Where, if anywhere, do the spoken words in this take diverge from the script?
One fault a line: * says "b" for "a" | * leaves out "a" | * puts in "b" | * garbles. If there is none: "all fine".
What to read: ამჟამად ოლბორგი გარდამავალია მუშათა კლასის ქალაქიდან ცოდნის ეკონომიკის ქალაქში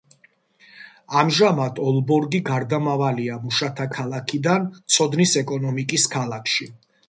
* leaves out "კლასის"